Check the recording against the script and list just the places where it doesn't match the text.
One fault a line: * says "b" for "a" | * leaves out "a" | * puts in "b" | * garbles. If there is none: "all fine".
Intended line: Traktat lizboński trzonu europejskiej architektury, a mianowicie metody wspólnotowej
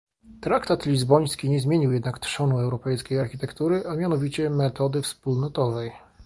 * puts in "nie zmienił jednak"